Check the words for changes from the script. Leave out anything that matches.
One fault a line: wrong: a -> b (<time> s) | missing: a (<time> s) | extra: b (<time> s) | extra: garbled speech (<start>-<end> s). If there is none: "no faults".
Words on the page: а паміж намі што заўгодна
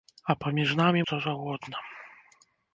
no faults